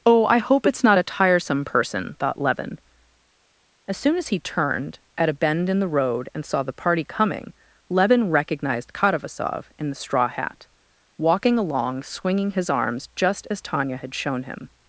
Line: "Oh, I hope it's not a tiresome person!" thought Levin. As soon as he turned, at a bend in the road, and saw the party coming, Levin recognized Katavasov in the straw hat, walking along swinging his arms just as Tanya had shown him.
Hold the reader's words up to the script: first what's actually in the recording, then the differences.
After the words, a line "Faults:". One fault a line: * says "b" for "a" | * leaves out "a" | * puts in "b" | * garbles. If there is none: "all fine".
"Oh, I hope it's not a tiresome person!" thought Levin. As soon as he turned, at a bend in the road, and saw the party coming, Levin recognized Katavasov in the straw hat, walking along swinging his arms just as Tanya had shown him.
Faults:
all fine